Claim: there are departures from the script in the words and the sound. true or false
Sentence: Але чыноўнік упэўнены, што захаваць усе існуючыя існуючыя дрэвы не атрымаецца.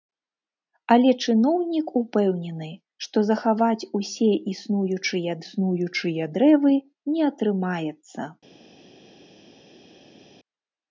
false